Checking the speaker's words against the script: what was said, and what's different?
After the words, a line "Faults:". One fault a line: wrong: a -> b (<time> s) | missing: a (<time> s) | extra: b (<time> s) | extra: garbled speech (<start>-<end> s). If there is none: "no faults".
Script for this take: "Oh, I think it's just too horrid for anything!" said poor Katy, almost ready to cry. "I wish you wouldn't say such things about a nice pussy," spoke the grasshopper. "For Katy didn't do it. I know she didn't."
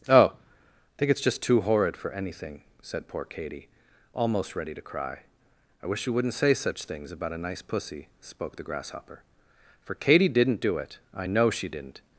"Oh, I think it's just too horrid for anything!" said poor Katy, almost ready to cry. "I wish you wouldn't say such things about a nice pussy," spoke the grasshopper. "For Katy didn't do it. I know she didn't."
Faults:
no faults